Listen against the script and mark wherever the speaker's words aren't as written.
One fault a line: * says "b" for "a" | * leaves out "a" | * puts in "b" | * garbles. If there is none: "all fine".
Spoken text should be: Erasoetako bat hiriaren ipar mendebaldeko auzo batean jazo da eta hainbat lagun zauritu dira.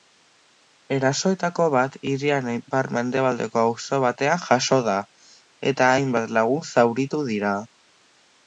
all fine